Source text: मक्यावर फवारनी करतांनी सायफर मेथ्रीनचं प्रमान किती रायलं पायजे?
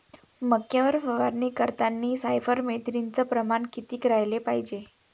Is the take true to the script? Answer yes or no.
yes